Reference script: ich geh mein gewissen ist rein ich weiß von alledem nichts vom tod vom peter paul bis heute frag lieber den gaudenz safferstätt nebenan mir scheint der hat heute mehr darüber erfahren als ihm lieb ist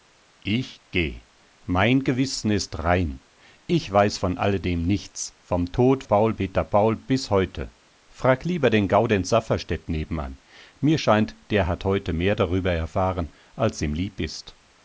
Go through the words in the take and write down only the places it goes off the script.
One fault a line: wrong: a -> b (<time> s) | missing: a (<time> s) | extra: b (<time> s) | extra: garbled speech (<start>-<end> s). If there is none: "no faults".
wrong: vom -> paul (6.0 s)